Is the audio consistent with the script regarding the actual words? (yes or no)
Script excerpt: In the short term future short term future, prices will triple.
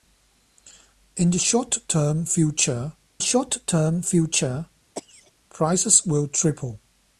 yes